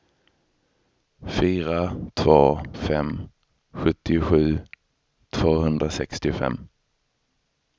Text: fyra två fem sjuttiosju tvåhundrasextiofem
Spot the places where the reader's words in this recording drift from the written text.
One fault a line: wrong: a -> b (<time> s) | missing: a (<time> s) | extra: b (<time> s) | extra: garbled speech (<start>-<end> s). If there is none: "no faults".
no faults